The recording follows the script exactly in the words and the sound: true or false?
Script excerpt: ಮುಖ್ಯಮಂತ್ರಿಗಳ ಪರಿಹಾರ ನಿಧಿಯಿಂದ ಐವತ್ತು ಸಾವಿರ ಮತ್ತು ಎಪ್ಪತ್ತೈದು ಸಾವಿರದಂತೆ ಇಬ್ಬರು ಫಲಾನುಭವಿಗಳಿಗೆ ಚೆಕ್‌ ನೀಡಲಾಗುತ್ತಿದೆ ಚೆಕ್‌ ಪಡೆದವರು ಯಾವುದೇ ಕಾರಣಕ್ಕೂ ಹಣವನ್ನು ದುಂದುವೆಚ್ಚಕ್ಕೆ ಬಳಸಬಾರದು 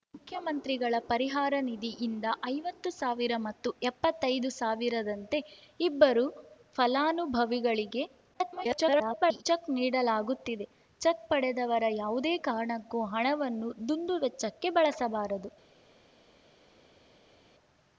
false